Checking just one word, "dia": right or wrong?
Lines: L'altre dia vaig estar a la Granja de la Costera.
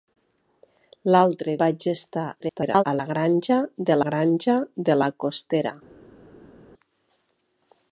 wrong